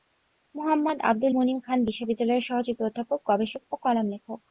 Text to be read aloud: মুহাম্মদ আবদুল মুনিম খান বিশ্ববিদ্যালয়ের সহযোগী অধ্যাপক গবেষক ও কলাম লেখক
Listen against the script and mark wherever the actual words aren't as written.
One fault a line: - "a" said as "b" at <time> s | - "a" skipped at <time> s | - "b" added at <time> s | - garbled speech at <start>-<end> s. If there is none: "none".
none